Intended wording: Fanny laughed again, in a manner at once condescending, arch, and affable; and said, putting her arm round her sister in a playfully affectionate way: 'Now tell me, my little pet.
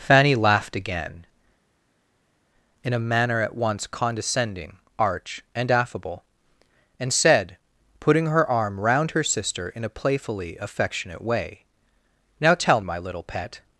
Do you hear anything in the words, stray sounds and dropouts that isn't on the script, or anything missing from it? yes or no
yes